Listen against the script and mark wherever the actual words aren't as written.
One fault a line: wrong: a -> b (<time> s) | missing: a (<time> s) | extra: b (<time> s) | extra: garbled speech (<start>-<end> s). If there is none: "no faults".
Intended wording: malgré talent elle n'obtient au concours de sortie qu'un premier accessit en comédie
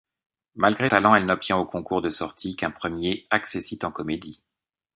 no faults